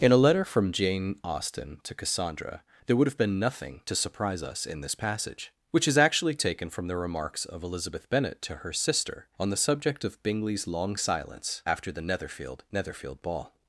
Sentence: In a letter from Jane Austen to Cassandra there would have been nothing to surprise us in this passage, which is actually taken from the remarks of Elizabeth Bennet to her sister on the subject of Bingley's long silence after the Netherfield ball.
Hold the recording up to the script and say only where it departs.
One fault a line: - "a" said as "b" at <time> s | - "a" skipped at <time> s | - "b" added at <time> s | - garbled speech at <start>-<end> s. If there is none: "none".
- "Netherfield" added at 12.7 s